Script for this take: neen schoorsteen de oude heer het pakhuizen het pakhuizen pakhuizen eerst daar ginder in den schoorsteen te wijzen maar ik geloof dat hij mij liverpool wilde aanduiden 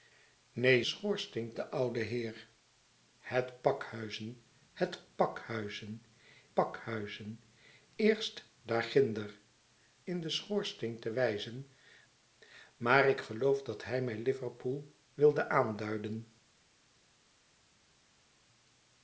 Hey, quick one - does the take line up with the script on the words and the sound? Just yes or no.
yes